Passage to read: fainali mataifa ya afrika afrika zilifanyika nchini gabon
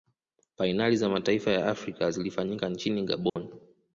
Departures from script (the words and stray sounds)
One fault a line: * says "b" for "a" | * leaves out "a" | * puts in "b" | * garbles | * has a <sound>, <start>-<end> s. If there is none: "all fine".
* puts in "za"
* leaves out "afrika"
* has a dropout, 3.3-3.4 s